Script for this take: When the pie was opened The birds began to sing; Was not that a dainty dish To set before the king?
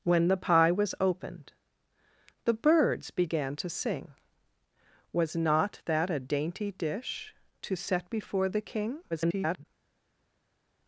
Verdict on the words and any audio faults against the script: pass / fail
fail